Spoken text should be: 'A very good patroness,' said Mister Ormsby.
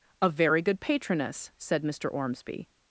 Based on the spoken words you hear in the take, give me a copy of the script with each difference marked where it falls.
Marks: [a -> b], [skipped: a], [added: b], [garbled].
'A very good patroness,' said Mister Ormsby.